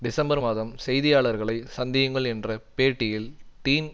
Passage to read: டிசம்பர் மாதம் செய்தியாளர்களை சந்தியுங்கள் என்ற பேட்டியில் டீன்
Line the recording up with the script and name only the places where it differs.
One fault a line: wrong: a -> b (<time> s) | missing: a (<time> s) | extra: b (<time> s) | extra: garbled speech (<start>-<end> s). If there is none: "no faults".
no faults